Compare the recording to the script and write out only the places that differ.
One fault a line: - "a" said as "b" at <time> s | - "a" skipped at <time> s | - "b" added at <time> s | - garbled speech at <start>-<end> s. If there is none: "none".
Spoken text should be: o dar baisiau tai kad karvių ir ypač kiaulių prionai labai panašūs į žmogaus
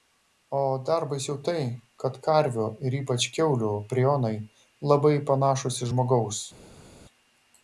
none